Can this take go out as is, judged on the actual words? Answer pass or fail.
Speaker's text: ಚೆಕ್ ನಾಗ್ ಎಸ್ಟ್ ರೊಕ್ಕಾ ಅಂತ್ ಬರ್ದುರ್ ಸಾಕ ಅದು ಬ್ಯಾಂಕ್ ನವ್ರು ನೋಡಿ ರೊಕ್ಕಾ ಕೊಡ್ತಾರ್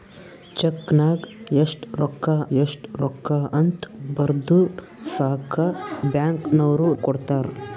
fail